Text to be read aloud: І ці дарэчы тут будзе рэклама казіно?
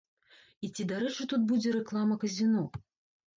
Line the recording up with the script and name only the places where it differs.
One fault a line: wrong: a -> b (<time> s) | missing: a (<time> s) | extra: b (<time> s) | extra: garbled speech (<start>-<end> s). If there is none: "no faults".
no faults